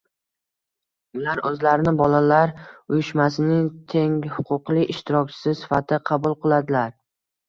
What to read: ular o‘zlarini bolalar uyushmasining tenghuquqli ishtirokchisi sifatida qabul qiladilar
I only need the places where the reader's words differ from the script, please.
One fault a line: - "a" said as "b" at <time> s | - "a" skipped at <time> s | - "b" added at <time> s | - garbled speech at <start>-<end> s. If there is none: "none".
none